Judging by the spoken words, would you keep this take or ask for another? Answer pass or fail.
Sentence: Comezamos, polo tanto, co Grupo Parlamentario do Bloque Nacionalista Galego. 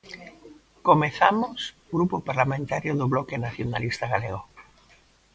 fail